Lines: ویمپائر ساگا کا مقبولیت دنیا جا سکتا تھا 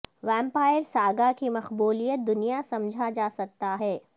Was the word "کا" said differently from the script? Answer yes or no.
yes